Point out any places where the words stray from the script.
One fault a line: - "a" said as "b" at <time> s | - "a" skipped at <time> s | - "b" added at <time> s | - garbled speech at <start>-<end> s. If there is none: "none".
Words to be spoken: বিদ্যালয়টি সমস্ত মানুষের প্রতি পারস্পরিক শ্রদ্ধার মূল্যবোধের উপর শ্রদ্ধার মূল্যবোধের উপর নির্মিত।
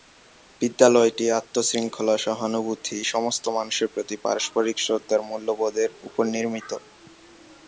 - "আত্ম শৃঙ্খলা সহানুভূতি" added at 1.3 s
- "শ্রদ্ধার মূল্যবোধের উপর" skipped at 6.2 s